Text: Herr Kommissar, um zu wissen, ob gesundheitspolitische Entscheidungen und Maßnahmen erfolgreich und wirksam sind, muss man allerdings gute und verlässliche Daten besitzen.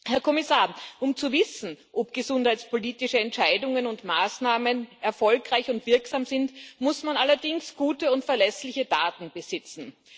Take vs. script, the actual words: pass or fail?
pass